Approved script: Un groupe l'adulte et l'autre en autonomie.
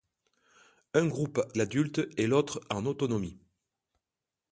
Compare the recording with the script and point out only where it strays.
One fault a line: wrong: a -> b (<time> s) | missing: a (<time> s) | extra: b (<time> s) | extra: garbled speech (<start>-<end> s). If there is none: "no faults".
no faults